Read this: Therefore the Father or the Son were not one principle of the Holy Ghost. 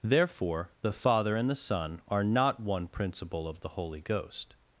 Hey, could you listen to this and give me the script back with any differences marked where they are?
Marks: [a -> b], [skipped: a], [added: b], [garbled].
Therefore the Father [or -> and] the Son [were -> are] not one principle of the Holy Ghost.